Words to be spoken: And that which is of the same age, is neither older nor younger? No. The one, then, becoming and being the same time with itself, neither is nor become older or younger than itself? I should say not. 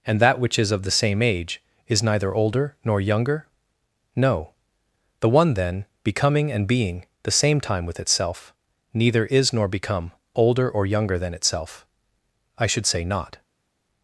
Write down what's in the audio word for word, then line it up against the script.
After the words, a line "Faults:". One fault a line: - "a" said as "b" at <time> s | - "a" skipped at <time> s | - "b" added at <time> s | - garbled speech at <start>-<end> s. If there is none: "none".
And that which is of the same age, is neither older nor younger? No. The one, then, becoming and being the same time with itself, neither is nor become older or younger than itself? I should say not.
Faults:
none